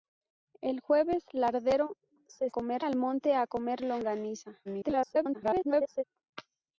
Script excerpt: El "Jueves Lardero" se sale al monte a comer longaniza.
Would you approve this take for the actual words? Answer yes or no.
no